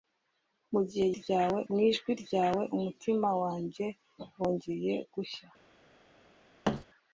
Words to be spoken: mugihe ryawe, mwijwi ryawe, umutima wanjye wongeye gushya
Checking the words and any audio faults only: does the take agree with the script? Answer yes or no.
no